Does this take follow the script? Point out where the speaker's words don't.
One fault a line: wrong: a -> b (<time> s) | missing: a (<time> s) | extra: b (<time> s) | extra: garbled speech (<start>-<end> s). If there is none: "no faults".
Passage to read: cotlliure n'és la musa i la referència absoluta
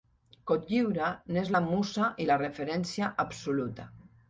no faults